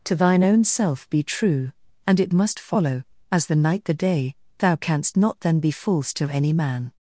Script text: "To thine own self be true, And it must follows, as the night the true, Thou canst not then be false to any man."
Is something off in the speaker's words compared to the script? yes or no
yes